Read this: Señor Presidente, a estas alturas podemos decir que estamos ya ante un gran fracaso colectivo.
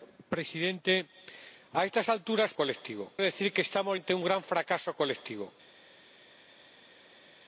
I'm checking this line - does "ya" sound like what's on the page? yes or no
no